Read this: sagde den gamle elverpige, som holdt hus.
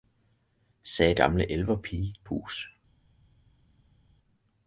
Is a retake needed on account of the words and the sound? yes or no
yes